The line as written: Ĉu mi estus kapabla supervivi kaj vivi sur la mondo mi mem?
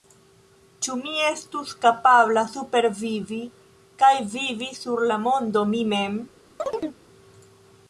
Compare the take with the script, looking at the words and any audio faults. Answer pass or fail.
fail